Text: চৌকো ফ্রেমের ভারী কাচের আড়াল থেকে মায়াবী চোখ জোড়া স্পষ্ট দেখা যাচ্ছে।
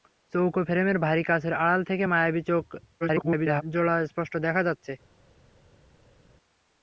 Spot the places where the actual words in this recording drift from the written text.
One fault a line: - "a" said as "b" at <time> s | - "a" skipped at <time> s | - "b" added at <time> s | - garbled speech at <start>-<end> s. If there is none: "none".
- garbled speech at 3.0-3.6 s